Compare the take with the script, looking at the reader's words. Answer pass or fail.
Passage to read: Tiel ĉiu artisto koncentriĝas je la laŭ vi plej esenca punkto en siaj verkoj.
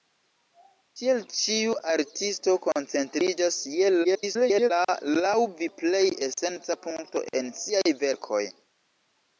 fail